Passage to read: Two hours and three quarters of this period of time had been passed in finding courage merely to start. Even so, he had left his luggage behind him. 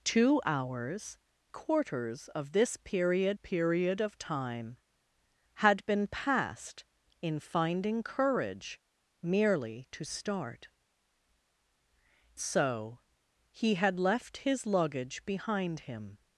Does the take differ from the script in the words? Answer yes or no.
yes